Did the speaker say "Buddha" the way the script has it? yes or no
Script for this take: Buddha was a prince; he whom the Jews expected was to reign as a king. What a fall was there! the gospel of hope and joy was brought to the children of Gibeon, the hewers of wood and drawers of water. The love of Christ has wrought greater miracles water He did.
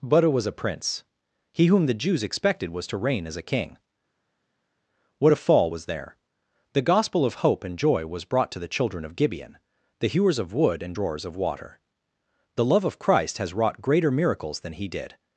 yes